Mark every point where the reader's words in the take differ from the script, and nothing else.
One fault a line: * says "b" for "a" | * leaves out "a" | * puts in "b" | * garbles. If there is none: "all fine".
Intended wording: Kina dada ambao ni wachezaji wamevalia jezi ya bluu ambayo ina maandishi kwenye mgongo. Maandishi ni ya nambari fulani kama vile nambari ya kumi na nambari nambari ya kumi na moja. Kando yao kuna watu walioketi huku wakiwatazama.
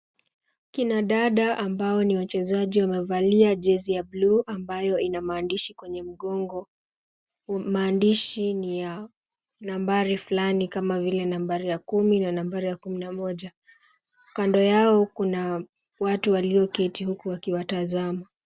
* leaves out "nambari"